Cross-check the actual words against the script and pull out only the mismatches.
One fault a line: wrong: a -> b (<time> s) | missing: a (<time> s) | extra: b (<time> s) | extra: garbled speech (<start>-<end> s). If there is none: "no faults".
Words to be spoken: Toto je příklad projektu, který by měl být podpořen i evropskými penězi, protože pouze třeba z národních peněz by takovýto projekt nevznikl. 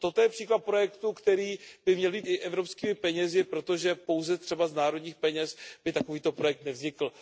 missing: podpořen (2.2 s)